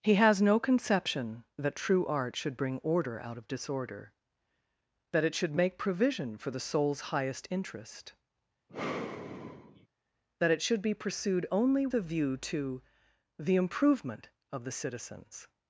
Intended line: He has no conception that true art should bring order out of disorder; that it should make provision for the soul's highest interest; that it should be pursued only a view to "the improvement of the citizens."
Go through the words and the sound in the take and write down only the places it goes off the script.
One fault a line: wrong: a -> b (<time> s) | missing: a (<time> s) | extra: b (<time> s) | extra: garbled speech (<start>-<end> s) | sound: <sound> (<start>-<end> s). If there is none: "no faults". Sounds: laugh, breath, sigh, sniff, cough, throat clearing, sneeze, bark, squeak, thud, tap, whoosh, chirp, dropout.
sound: sigh (8.7-9.9 s)